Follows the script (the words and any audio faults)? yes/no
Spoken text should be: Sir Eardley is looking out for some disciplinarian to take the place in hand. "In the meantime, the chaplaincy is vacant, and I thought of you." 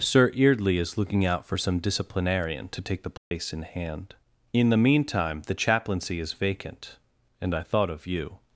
no